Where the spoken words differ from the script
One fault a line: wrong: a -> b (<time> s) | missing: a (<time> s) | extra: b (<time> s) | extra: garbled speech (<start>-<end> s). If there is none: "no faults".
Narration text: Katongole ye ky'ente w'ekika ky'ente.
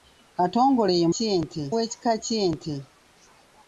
no faults